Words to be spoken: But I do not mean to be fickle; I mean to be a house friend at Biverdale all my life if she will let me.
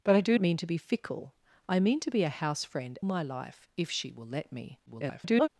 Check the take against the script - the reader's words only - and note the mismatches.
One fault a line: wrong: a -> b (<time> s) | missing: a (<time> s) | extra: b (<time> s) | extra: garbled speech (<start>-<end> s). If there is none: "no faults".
missing: not (0.4 s)
missing: at Biverdale all (3.0 s)
extra: garbled speech (4.9-5.5 s)